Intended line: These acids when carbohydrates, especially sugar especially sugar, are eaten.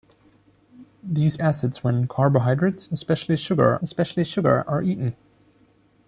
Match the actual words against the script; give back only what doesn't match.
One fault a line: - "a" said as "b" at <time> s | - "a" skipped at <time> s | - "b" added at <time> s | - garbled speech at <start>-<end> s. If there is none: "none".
none